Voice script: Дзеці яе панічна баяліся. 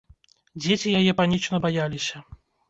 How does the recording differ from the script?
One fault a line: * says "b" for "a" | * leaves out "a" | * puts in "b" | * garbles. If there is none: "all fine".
all fine